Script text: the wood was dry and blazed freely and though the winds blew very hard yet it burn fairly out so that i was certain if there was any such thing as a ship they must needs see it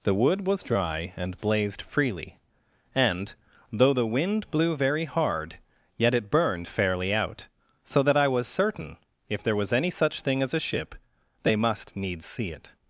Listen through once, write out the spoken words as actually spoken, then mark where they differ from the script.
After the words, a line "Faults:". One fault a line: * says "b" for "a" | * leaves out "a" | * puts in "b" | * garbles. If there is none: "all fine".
the wood was dry and blazed freely and though the wind blew very hard yet it burned fairly out so that i was certain if there was any such thing as a ship they must needs see it
Faults:
* says "wind" for "winds"
* says "burned" for "burn"